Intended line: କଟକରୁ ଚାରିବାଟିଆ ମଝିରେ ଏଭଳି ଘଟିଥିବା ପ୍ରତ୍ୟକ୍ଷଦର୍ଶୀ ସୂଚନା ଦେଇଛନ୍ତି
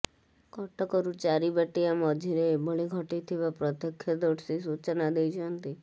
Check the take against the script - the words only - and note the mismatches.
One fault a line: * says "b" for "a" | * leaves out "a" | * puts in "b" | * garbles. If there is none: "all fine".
all fine